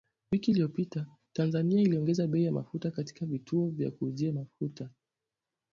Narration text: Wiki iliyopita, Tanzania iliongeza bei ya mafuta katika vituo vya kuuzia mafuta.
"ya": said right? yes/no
yes